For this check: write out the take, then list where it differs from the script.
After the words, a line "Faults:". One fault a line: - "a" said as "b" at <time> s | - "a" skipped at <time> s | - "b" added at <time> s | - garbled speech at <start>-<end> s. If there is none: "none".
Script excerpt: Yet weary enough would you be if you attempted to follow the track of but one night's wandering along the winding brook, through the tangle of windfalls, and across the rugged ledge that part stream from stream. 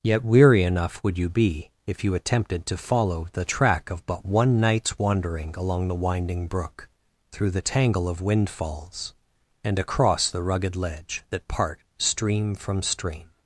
Yet weary enough would you be if you attempted to follow the track of but one night's wandering along the winding brook, through the tangle of windfalls, and across the rugged ledge that part stream from stream.
Faults:
none